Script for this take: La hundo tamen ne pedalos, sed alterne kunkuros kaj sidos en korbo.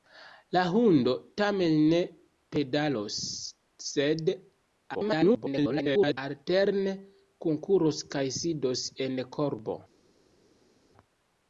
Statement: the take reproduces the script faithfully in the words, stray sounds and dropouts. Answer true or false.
false